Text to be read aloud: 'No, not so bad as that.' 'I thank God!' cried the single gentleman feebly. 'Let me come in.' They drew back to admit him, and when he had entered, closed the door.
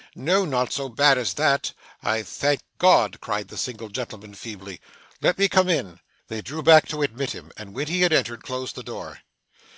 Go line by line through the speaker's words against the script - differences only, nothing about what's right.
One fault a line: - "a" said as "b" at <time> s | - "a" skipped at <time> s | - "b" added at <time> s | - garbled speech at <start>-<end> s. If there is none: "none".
none